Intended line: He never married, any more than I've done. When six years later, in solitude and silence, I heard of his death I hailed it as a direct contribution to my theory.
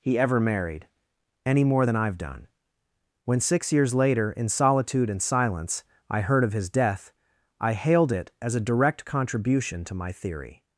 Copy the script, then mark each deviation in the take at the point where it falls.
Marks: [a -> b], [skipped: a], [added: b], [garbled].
He [never -> ever] married, any more than I've done. When six years later, in solitude and silence, I heard of his death I hailed it as a direct contribution to my theory.